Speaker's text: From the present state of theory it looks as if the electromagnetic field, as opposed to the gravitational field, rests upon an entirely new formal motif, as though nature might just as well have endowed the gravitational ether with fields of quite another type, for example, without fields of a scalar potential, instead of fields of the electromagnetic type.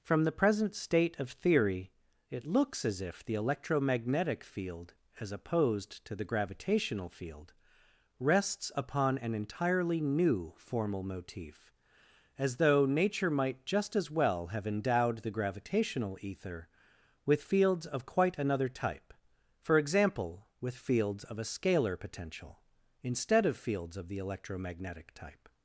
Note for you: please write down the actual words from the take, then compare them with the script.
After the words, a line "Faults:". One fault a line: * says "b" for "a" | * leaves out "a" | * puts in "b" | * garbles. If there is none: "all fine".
From the present state of theory it looks as if the electromagnetic field, as opposed to the gravitational field, rests upon an entirely new formal motif, as though nature might just as well have endowed the gravitational ether with fields of quite another type, for example, with fields of a scalar potential, instead of fields of the electromagnetic type.
Faults:
* says "with" for "without"